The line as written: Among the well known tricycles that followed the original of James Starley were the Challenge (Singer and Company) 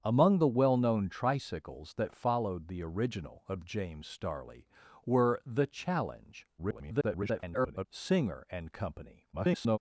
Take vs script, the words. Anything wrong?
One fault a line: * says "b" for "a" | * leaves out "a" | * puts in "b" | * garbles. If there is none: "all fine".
* garbles
* garbles